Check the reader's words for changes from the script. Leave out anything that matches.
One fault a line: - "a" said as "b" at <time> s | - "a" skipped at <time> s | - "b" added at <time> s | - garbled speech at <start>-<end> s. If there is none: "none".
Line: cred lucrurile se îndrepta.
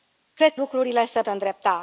none